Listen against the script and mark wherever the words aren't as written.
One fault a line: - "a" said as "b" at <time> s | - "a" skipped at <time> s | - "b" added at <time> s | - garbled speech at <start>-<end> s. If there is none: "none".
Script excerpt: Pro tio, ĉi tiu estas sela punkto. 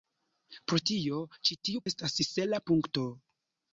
none